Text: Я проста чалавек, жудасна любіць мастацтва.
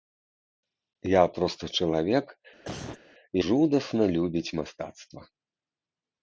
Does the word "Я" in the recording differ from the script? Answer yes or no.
no